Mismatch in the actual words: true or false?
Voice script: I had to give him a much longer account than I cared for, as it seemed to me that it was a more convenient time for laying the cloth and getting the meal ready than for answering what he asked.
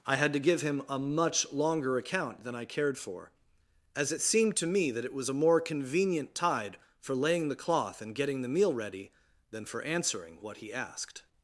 true